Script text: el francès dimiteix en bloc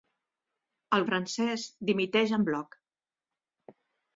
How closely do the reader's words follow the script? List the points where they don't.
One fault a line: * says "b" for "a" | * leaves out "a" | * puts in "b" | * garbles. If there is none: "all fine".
all fine